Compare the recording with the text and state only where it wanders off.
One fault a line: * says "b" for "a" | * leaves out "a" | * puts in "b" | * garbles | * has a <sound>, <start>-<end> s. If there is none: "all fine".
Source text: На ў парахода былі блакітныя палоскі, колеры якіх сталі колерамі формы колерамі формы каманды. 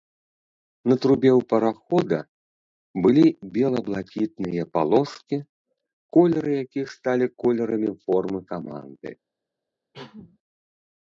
* puts in "трубе"
* puts in "бела"
* leaves out "колерамі формы"
* has a cough, 9.9-10.4 s